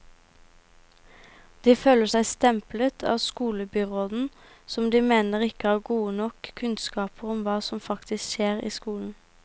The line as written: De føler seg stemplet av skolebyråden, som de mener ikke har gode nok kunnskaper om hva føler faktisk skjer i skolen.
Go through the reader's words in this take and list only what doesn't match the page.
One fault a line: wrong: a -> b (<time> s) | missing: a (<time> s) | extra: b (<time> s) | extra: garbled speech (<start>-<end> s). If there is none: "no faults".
wrong: føler -> som (7.7 s)